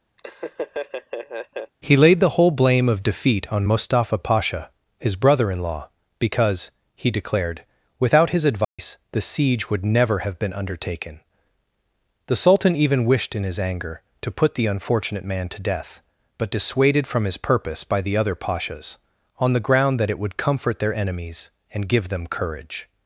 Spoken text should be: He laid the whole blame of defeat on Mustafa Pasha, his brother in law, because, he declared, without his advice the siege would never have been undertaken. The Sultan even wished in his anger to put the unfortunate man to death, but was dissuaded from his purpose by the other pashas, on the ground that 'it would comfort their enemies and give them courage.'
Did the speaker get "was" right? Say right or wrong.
wrong